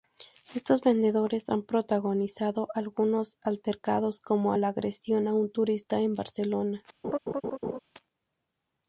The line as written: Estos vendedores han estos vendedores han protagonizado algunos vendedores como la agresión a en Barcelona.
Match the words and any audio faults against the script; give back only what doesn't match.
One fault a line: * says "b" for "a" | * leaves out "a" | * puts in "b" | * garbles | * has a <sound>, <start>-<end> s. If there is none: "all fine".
* leaves out "estos vendedores han"
* says "altercados" for "vendedores"
* puts in "un turista"
* has a laugh, 7.0-7.8 s